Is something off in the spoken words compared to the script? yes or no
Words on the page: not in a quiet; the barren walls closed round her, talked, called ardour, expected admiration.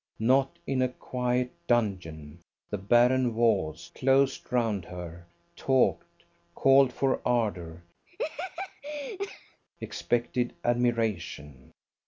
yes